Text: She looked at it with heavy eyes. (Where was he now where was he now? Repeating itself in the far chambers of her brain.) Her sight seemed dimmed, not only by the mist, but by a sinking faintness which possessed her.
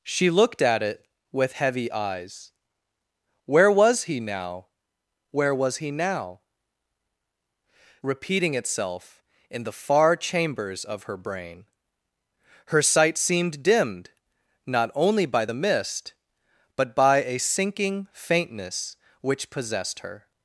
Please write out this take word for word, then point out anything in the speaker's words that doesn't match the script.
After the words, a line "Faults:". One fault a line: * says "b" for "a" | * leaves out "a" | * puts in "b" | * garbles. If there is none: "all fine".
She looked at it with heavy eyes. (Where was he now where was he now? Repeating itself in the far chambers of her brain.) Her sight seemed dimmed, not only by the mist, but by a sinking faintness which possessed her.
Faults:
all fine